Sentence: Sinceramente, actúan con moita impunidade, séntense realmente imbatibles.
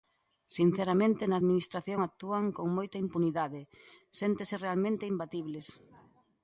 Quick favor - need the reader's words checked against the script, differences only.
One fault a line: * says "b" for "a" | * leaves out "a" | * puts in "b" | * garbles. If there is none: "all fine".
* puts in "na Administración"